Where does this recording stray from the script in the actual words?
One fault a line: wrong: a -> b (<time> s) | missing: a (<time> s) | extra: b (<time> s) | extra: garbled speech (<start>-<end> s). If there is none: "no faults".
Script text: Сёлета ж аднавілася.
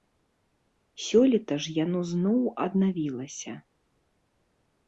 extra: яно зноў (1.8 s)